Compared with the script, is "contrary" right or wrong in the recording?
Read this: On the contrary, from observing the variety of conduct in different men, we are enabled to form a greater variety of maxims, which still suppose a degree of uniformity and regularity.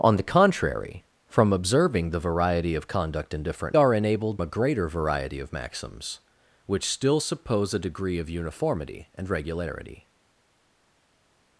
right